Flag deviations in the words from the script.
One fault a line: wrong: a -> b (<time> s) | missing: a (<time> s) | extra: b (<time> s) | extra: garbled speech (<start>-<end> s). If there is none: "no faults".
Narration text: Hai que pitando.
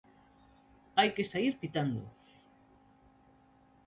extra: saír (1.3 s)